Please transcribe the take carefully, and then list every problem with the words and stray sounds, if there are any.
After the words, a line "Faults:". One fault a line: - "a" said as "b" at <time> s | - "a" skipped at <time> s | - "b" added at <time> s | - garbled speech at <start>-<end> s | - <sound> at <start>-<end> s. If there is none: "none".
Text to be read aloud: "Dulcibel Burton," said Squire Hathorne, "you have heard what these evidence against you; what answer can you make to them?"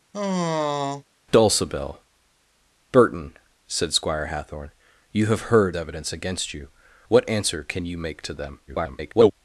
"Dulcibel Burton," said Squire Hathorne, "you have heard evidence against you; what answer can you make to them?" [garbled]
Faults:
- sigh at 0.1-1.0 s
- "what these" skipped at 5.8 s
- garbled speech at 8.7-9.3 s